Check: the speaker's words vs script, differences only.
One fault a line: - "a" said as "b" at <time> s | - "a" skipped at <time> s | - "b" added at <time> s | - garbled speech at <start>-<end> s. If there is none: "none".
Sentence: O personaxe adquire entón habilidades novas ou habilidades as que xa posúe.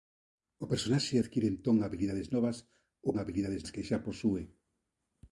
none